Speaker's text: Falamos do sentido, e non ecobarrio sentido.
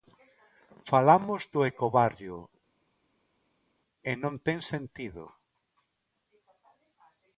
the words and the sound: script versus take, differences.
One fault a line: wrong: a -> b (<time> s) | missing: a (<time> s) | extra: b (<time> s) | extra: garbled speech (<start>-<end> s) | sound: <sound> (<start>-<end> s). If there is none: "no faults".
wrong: sentido -> ecobarrio (1.7 s)
wrong: ecobarrio -> ten (4.5 s)